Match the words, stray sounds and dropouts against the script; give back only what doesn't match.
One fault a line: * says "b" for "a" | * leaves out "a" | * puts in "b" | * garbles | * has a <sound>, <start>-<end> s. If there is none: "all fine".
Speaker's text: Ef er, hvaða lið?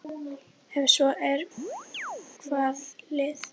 * puts in "svo"
* has a chirp, 1.6-2.3 s